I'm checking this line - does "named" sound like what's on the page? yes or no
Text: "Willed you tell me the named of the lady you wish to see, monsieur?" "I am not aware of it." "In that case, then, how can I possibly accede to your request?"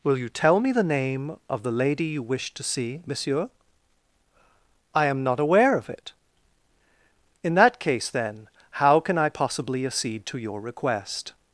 no